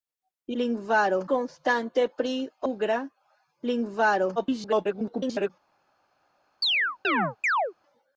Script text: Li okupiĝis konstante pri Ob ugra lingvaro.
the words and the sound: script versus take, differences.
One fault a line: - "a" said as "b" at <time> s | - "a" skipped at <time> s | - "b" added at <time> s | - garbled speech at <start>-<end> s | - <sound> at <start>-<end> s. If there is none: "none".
- "okupiĝis" said as "lingvaro" at 0.6 s
- "Ob" skipped at 2.3 s
- garbled speech at 4.4-5.5 s
- chirp at 6.6-7.7 s